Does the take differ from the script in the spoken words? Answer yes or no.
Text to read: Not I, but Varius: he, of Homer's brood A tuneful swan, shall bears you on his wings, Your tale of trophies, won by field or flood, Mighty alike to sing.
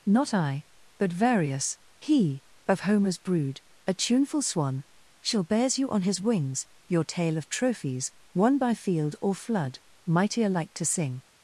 no